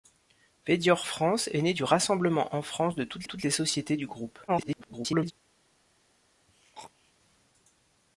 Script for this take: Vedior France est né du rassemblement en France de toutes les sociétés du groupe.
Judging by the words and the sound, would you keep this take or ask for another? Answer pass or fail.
fail